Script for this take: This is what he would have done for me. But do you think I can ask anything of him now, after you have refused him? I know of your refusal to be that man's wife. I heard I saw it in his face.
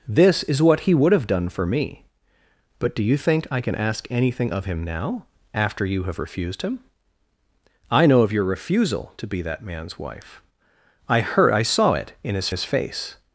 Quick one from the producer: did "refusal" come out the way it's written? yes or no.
yes